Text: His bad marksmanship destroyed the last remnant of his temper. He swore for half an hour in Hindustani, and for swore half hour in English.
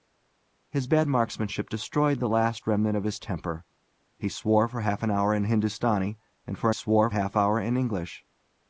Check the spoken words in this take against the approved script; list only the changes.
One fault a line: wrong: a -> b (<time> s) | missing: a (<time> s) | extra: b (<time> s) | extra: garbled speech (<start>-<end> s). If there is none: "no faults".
no faults